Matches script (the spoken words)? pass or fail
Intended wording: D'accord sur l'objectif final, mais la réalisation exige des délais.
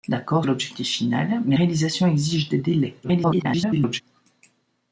fail